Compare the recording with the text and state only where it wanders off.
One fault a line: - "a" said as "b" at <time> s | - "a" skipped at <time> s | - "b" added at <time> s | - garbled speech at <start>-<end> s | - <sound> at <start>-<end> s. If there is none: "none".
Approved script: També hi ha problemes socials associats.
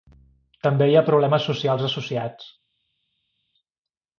none